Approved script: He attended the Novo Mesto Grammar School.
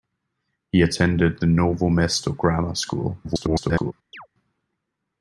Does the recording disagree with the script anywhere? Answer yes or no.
yes